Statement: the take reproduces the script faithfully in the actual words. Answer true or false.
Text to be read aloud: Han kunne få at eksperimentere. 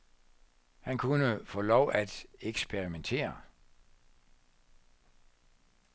false